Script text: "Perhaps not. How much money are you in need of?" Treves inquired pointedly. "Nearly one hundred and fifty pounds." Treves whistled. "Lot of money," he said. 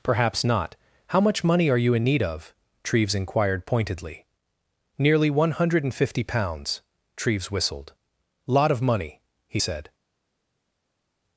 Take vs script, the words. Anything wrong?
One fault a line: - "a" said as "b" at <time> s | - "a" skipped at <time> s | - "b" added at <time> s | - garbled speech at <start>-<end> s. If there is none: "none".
none